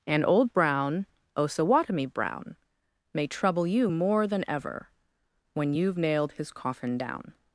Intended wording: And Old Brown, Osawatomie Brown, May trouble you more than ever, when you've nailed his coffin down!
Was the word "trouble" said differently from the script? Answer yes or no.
no